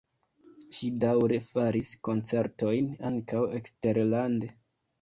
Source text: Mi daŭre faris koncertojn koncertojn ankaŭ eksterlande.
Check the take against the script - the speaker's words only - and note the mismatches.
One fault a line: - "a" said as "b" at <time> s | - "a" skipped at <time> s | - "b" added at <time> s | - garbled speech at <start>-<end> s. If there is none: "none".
- "Mi" said as "Ŝi" at 0.8 s
- "koncertojn" skipped at 2.9 s